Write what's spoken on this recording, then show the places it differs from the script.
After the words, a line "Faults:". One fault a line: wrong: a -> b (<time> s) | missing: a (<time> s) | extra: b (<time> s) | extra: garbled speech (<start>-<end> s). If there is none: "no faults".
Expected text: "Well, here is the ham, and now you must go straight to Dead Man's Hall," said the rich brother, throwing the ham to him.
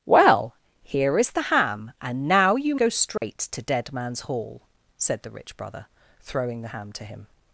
"Well, here is the ham, and now you go straight to Dead Man's Hall," said the rich brother, throwing the ham to him.
Faults:
missing: must (2.8 s)